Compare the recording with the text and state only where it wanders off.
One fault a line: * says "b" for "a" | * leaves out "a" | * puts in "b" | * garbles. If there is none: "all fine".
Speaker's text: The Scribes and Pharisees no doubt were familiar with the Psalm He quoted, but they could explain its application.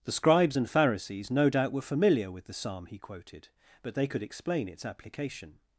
all fine